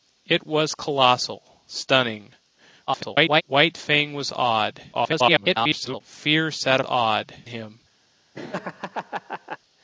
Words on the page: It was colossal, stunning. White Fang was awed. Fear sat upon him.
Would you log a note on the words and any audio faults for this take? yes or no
yes